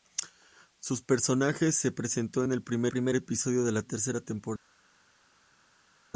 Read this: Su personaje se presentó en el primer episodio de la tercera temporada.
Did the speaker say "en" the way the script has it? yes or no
yes